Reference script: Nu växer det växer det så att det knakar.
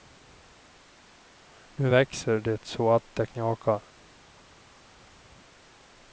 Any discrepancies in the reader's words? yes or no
yes